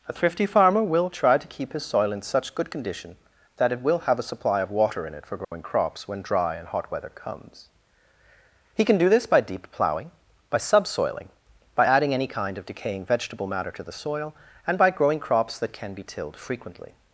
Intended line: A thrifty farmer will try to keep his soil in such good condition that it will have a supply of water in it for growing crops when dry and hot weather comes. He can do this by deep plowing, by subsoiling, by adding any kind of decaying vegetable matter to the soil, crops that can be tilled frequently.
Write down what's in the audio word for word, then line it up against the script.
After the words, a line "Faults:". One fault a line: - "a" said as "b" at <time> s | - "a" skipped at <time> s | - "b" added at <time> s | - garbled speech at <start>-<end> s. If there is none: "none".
A thrifty farmer will try to keep his soil in such good condition that it will have a supply of water in it for growing crops when dry and hot weather comes. He can do this by deep plowing, by subsoiling, by adding any kind of decaying vegetable matter to the soil, and by growing crops that can be tilled frequently.
Faults:
- "and by growing" added at 14.7 s